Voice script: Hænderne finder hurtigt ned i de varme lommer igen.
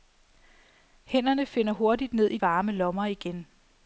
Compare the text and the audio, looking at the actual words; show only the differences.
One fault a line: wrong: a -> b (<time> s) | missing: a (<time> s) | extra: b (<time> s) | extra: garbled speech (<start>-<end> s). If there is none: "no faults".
missing: de (2.4 s)